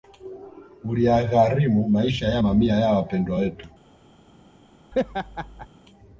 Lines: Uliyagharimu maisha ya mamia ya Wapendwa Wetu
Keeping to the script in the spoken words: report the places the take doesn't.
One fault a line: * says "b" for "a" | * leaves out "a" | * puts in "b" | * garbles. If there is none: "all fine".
all fine